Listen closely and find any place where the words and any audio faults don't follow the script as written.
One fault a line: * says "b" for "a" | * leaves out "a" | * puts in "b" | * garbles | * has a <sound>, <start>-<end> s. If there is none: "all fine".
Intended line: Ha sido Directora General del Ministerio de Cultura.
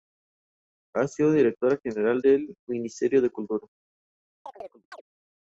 * has a chirp, 4.5-5.0 s